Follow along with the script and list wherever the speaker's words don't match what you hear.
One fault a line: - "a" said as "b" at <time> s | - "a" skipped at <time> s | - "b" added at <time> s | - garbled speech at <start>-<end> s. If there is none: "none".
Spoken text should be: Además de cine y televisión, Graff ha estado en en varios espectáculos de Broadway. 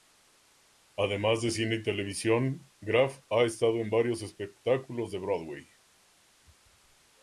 - "en" skipped at 3.9 s